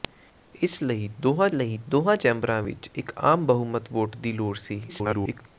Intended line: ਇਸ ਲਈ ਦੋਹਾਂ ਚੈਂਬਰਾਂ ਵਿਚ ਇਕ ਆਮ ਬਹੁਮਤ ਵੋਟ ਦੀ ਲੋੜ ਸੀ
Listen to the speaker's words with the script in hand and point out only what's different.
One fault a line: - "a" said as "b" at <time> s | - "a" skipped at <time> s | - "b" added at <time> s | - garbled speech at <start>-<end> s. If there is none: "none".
- "ਲਈ ਦੋਹਾਂ" added at 1.5 s
- garbled speech at 4.9-5.4 s